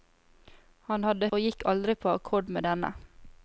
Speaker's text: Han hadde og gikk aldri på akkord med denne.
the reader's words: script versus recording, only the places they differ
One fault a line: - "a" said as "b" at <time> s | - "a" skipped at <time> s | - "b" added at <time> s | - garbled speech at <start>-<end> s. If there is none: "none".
none